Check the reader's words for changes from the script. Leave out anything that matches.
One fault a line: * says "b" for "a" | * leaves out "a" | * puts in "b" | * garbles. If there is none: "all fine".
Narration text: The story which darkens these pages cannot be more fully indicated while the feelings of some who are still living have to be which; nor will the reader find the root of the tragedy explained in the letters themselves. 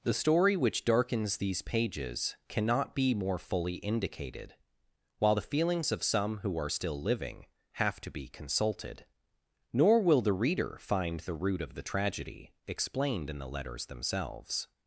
* says "consulted" for "which"